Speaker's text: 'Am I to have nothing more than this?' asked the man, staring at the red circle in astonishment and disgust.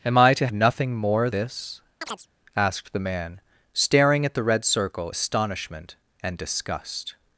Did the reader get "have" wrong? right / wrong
wrong